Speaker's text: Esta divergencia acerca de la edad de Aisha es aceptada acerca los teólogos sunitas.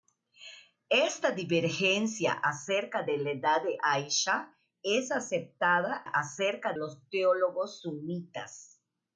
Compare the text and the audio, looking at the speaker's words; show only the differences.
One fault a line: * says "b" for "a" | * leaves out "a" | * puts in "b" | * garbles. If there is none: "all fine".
all fine